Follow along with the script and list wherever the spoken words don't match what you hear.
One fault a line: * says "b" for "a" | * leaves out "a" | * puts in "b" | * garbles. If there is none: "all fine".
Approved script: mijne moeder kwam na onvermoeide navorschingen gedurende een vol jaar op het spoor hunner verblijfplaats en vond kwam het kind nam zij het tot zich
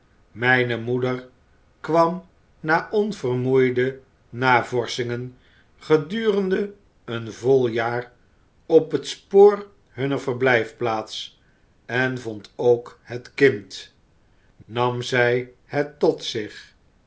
* says "ook" for "kwam"